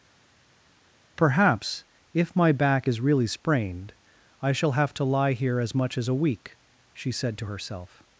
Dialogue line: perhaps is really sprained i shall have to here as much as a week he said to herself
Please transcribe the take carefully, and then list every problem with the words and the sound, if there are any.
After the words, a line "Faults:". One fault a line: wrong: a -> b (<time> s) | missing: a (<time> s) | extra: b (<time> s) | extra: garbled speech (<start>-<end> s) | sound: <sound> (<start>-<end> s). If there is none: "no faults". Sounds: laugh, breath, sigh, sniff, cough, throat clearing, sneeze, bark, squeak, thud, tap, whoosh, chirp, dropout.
perhaps if my back is really sprained i shall have to lie here as much as a week she said to herself
Faults:
extra: if my back (2.1 s)
extra: lie (5.0 s)
wrong: he -> she (6.9 s)